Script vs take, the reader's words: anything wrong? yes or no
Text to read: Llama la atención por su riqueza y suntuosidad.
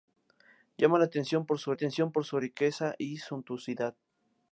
yes